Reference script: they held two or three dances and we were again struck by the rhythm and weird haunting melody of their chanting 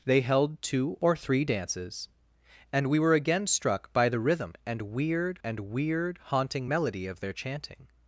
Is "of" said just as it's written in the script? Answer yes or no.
yes